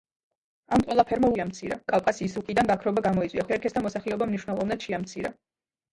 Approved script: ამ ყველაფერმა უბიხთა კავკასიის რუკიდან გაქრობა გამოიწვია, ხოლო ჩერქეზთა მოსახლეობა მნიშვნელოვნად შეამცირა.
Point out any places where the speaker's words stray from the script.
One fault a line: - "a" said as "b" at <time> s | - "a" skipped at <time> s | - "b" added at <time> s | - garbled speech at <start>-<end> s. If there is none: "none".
- "უბიხთა" said as "შეამცირა" at 1.4 s
- "ხოლო" skipped at 3.4 s